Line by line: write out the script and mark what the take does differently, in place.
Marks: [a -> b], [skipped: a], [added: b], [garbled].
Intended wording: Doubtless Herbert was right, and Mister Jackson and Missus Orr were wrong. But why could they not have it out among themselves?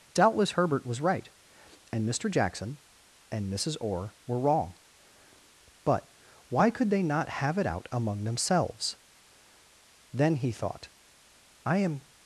Doubtless Herbert was right, and Mister Jackson and Missus Orr were wrong. But why could they not have it out among themselves? [added: Then he thought I am]